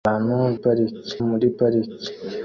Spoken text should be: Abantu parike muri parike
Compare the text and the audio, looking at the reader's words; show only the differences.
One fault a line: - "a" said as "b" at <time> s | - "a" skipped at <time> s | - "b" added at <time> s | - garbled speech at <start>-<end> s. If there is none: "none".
none